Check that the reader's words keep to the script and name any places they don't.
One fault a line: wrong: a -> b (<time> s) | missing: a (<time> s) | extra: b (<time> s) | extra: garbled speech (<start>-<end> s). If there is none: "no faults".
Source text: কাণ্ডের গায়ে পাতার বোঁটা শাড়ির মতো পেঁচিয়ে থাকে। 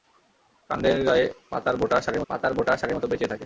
extra: পাতার বোঁটা শাড়ির (2.3 s)